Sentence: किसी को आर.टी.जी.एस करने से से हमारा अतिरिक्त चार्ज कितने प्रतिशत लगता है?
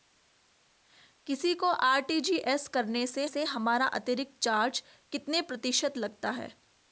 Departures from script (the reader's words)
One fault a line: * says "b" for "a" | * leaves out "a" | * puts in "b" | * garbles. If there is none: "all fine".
all fine